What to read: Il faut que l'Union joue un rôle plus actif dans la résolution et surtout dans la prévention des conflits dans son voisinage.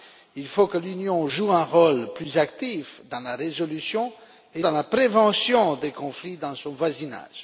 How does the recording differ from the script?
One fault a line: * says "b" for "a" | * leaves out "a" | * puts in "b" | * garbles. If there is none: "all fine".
* leaves out "surtout"